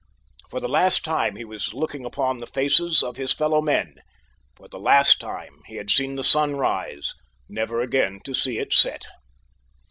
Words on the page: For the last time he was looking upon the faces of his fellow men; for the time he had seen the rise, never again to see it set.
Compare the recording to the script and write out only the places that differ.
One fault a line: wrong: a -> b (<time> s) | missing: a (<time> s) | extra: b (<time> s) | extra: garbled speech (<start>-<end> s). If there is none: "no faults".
extra: last (4.8 s)
extra: sun (6.2 s)